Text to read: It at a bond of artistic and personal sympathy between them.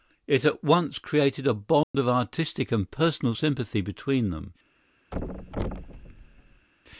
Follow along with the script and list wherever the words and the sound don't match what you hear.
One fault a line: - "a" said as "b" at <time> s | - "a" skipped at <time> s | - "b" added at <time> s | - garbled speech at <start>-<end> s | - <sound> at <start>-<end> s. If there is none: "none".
- "once created" added at 0.6 s
- dropout at 1.8-1.9 s
- thud at 5.1-6.7 s